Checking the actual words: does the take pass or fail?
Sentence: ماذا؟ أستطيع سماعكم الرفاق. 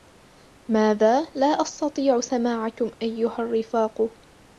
fail